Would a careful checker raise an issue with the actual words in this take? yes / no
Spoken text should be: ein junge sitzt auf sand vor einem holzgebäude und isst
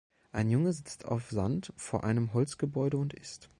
no